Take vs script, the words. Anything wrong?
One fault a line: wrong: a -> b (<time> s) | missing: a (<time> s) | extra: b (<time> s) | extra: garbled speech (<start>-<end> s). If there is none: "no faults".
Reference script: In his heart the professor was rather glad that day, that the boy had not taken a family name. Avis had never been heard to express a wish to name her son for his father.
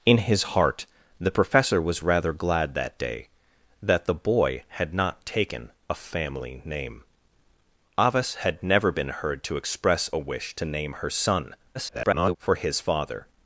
extra: garbled speech (11.7-12.4 s)